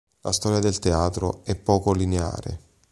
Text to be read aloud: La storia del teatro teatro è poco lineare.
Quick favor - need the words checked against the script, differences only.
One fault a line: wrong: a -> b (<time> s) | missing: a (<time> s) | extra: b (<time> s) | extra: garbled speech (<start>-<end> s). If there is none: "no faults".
missing: teatro (1.4 s)